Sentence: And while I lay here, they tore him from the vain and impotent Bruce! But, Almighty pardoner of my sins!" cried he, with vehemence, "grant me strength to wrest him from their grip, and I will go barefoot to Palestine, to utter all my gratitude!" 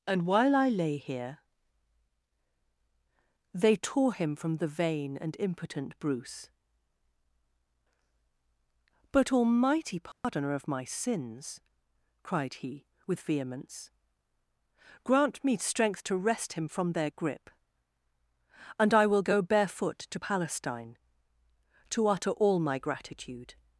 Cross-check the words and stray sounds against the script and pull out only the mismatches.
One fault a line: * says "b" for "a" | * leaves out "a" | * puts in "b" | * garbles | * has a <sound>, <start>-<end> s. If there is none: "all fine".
* has a dropout, 10.1-10.2 s